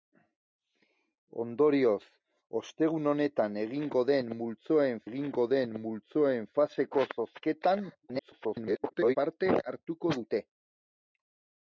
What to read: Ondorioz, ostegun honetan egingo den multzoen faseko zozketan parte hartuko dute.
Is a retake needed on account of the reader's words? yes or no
yes